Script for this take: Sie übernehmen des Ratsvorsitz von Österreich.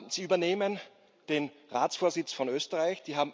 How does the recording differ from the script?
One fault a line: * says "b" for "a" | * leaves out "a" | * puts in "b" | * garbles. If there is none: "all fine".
* says "den" for "des"